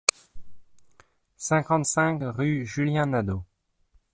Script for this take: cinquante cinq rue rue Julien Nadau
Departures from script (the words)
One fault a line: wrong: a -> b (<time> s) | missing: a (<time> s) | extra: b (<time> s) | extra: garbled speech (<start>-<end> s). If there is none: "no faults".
missing: rue (2.6 s)